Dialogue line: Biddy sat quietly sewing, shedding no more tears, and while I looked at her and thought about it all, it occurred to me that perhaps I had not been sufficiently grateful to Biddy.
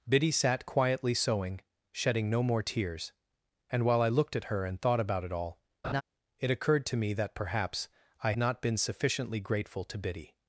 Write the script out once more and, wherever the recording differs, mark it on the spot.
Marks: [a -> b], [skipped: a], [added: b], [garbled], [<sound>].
Biddy sat quietly sewing, shedding no more tears, and while I looked at her and thought about it all, [laugh] it occurred to me that perhaps I [skipped: had] not been sufficiently grateful to Biddy.